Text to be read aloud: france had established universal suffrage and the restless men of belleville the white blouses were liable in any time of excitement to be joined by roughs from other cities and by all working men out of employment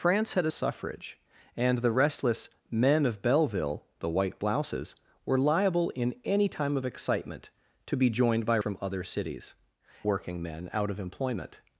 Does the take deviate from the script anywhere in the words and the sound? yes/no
yes